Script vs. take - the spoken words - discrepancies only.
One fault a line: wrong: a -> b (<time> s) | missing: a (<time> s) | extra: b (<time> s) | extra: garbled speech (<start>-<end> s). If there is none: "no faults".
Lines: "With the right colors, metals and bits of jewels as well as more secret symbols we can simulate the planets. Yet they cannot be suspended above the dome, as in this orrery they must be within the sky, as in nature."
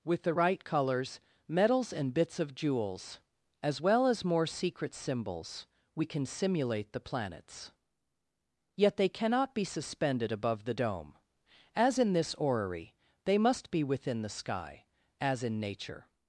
no faults